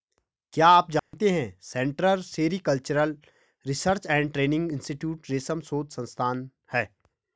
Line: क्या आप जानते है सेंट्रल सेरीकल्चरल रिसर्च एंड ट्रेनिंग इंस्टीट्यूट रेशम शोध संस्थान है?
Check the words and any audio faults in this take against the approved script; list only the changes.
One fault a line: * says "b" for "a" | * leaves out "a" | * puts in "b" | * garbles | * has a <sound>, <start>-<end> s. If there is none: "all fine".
* has a dropout, 1.0-1.1 s